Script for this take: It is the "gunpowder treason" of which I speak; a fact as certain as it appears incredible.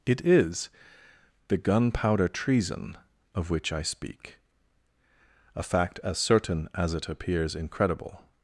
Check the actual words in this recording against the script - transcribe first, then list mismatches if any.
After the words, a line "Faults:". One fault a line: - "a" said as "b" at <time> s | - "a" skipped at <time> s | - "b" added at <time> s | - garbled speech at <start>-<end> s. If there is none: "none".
It is the "gunpowder treason" of which I speak; a fact as certain as it appears incredible.
Faults:
none